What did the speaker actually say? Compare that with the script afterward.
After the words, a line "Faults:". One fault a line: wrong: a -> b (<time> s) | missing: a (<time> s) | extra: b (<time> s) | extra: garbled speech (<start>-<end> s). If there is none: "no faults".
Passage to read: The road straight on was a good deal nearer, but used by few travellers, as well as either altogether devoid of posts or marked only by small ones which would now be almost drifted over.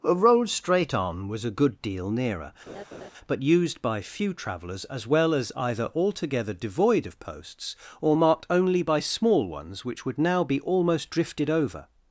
A road straight on was a good deal nearer, but used by few travellers, as well as either altogether devoid of posts or marked only by small ones which would now be almost drifted over.
Faults:
wrong: The -> A (0.0 s)